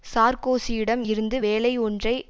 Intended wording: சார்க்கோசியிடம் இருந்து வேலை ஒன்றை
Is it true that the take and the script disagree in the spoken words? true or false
false